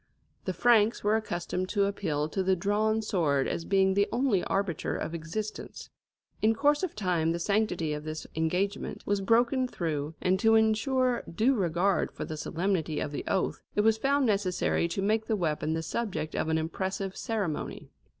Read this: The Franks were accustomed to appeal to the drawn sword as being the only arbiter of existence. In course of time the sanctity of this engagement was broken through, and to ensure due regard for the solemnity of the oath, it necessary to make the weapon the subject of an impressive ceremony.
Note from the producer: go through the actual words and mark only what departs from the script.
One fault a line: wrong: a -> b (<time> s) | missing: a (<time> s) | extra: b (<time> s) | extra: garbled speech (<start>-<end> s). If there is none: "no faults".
extra: was found (13.8 s)